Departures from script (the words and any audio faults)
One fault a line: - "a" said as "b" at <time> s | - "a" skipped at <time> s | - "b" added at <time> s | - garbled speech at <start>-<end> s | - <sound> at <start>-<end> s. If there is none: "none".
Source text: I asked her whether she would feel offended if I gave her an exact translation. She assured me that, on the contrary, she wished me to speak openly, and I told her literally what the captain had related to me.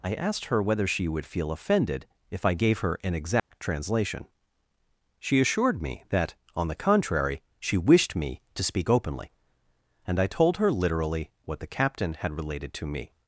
- dropout at 3.4-3.5 s